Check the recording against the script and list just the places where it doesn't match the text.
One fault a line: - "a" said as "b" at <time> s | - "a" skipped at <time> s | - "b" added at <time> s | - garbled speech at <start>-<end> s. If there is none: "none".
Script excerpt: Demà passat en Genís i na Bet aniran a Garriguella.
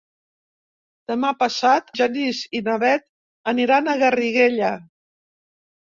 - "en" skipped at 1.9 s